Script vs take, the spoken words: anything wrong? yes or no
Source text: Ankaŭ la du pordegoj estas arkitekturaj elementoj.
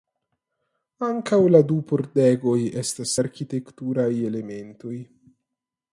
no